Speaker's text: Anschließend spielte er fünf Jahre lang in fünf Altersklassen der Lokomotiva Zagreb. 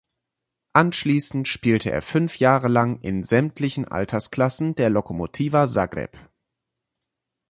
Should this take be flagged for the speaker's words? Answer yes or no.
yes